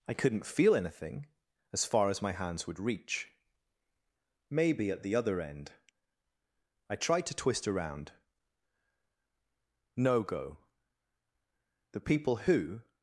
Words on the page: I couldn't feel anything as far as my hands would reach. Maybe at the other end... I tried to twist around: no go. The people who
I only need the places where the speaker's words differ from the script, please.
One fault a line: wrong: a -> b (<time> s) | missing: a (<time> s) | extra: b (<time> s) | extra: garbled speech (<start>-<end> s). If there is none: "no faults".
no faults